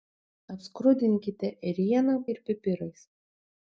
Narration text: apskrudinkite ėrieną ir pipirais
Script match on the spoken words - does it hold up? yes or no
yes